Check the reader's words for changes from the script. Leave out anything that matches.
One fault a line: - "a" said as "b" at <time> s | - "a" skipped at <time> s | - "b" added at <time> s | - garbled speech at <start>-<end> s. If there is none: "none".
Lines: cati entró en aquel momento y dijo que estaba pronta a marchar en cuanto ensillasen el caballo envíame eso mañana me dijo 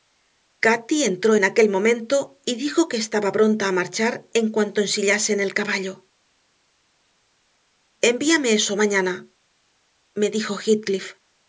none